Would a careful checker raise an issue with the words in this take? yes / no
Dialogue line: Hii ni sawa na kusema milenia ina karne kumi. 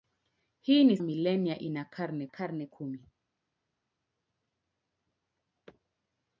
yes